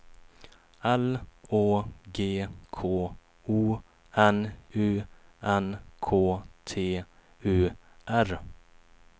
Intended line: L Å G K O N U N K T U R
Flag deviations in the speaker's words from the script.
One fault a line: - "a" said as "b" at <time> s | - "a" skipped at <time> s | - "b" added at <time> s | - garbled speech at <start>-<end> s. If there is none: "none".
none